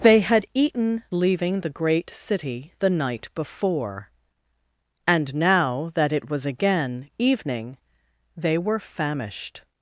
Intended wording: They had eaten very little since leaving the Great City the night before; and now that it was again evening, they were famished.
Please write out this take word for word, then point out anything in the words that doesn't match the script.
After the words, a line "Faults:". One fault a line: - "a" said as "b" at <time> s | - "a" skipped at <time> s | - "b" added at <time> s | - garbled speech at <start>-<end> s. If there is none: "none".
They had eaten leaving the Great City the night before; and now that it was again evening, they were famished.
Faults:
- "very little since" skipped at 1.0 s